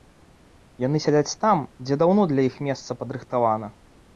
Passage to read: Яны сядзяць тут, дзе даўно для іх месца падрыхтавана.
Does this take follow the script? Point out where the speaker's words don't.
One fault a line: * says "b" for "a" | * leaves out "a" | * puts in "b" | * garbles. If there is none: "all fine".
* says "там" for "тут"